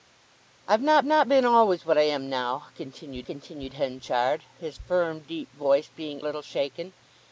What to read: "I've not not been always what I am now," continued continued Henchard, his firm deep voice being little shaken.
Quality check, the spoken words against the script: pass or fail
pass